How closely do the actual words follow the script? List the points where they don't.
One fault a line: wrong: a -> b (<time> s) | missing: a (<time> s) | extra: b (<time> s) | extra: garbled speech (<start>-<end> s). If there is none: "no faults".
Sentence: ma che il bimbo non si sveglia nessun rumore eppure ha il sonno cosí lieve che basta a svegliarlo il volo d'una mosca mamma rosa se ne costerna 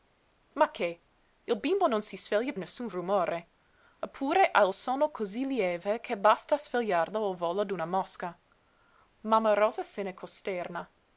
no faults